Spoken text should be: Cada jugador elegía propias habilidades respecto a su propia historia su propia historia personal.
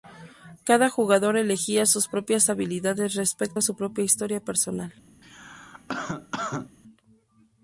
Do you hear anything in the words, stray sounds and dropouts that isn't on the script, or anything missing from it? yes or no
yes